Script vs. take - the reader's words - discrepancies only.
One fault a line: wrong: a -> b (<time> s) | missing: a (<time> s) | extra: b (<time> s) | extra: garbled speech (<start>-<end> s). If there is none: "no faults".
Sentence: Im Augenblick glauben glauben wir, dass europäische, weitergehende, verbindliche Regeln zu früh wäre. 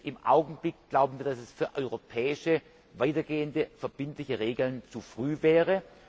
missing: glauben (1.2 s)
extra: es für (1.4 s)